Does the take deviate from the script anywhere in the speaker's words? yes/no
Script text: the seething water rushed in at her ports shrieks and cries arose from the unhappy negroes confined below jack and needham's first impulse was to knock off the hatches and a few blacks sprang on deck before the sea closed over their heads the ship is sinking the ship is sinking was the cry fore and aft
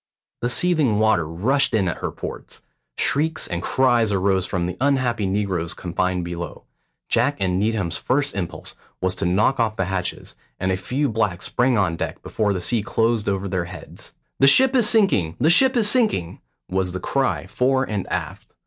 no